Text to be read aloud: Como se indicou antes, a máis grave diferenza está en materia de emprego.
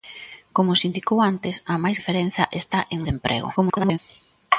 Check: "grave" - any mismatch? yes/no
yes